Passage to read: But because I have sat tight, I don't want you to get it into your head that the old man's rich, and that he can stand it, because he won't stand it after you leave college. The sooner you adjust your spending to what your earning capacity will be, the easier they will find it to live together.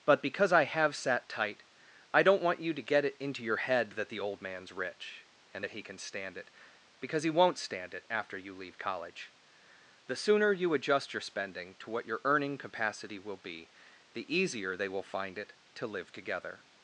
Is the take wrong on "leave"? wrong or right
right